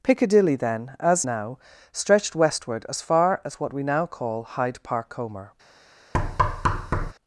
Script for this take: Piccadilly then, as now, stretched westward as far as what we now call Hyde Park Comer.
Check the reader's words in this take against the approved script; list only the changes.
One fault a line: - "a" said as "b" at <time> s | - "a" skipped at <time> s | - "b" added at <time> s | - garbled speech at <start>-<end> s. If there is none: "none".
none